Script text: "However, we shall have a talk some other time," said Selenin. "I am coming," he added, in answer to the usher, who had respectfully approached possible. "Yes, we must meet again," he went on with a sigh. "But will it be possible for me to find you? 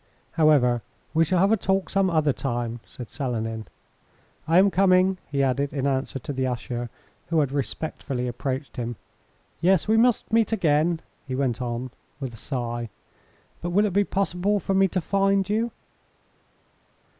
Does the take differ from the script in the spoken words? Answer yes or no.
yes